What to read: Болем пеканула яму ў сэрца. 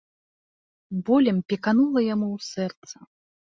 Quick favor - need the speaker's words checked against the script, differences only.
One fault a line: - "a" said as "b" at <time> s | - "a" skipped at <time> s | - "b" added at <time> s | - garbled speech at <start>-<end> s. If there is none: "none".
none